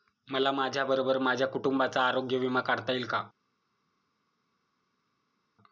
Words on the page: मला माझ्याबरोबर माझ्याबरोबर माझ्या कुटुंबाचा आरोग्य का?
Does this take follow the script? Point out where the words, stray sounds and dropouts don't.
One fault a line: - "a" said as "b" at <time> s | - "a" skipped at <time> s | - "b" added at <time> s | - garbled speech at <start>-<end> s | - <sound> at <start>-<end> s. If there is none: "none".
- "माझ्याबरोबर" skipped at 1.2 s
- "विमा काढता येईल" added at 2.4 s